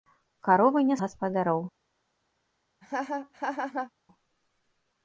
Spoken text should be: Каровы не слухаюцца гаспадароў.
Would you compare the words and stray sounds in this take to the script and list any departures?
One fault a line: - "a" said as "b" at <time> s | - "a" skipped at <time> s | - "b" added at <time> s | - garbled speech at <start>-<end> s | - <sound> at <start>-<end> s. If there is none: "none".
- "слухаюцца" skipped at 0.9 s
- laugh at 2.8-3.9 s